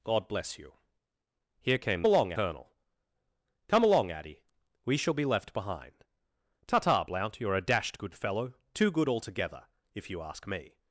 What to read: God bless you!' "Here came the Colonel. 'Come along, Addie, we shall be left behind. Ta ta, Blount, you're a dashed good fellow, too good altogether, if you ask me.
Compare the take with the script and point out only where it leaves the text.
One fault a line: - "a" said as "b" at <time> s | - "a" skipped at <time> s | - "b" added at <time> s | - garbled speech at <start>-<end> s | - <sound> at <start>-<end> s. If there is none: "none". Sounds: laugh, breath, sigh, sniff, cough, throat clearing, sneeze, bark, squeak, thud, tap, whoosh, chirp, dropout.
- "the" said as "along" at 2.0 s